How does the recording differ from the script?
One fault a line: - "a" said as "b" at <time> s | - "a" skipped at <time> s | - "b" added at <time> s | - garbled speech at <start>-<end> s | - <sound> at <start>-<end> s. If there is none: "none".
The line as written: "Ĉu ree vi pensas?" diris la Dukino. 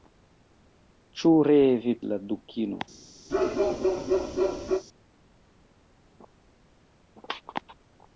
- "pensas diris" skipped at 1.9 s
- bark at 3.3-4.8 s